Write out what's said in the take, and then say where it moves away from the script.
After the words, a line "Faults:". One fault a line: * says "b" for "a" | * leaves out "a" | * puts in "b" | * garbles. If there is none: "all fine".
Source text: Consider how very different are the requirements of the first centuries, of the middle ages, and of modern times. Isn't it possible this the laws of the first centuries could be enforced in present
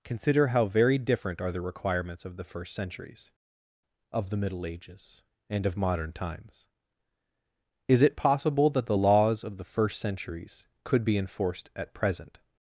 Consider how very different are the requirements of the first centuries, of the middle ages, and of modern times. Is it possible that the laws of the first centuries could be enforced at present
Faults:
* says "Is" for "Isn't"
* says "that" for "this"
* says "at" for "in"